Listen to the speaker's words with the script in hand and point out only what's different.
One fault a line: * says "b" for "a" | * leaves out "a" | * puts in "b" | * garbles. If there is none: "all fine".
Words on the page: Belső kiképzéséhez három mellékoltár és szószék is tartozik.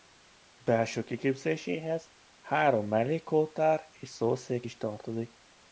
all fine